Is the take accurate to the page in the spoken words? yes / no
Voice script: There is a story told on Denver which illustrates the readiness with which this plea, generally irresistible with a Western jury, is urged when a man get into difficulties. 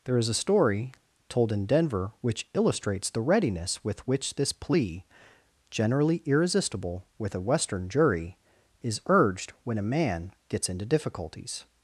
no